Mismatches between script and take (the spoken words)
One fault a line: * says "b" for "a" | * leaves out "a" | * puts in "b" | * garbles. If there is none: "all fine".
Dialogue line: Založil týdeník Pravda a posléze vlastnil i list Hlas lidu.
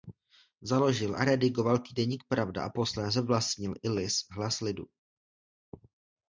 * puts in "a redigoval"